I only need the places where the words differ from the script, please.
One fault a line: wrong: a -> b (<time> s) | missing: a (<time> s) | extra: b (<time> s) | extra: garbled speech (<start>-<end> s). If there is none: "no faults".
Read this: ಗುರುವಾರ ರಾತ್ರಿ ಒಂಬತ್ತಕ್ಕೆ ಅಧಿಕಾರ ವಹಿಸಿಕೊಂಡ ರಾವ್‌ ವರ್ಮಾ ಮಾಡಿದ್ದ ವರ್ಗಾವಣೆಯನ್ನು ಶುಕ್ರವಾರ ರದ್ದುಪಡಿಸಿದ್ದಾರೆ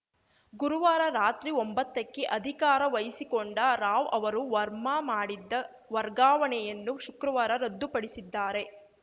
extra: ಅವರು (4.1 s)